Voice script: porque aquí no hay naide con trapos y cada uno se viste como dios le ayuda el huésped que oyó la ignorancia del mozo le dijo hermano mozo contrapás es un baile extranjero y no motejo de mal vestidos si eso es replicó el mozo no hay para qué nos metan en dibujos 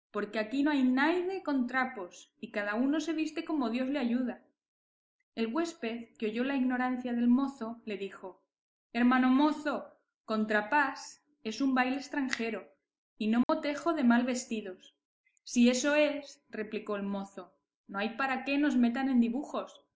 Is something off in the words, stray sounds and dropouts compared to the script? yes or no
yes